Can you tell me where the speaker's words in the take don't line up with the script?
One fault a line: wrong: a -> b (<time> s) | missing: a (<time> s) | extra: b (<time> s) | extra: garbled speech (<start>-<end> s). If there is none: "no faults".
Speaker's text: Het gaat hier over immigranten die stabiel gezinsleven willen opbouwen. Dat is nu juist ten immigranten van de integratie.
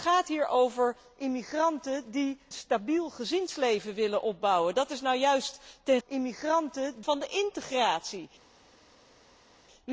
no faults